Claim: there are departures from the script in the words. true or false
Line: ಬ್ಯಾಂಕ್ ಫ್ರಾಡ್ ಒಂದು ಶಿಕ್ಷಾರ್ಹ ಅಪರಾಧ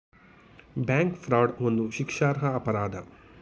false